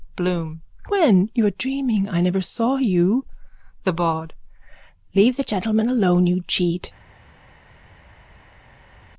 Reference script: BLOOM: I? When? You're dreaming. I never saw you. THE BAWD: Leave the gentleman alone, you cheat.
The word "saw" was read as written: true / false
true